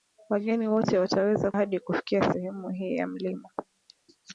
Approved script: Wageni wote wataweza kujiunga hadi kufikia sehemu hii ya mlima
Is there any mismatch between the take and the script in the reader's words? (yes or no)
yes